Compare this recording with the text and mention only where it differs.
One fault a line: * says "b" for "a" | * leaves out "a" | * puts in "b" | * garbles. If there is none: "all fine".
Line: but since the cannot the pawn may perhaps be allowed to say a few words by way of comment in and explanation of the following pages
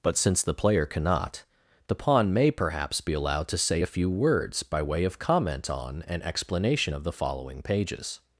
* puts in "player"
* says "on" for "in"